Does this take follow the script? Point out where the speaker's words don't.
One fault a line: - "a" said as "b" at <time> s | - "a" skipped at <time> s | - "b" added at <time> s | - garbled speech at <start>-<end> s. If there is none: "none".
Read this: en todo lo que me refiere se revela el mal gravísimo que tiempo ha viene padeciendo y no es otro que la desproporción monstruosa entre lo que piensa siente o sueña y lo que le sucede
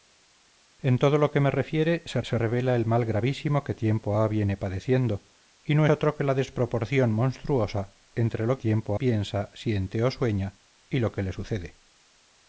- "se" added at 2.2 s
- "es" skipped at 5.9 s
- "que" said as "tiempo" at 8.6 s